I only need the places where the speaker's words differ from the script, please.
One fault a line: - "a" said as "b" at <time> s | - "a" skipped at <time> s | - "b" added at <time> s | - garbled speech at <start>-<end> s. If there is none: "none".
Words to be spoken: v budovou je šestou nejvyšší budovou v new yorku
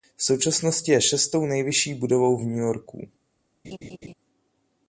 - "budovou" said as "současnosti" at 0.2 s